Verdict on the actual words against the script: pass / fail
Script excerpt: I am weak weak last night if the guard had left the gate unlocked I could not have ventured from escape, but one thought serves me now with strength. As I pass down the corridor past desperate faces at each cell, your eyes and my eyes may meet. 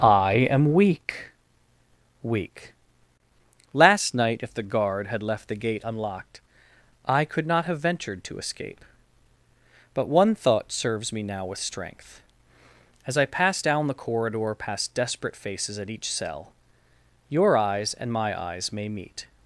fail